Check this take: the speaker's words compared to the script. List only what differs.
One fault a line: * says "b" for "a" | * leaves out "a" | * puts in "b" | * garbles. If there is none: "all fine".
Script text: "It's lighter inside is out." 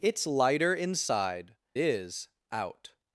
all fine